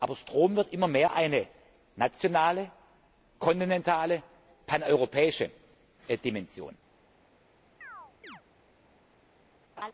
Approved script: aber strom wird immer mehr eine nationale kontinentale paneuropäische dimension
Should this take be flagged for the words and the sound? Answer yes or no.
yes